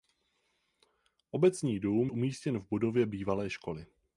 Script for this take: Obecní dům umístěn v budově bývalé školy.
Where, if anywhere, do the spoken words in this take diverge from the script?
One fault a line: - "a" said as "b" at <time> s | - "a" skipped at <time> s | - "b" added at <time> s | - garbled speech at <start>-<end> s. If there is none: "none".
none